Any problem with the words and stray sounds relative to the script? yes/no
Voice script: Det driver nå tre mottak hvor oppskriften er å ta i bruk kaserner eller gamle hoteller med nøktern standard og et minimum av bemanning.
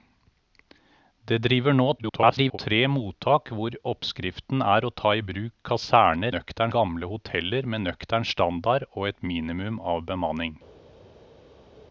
yes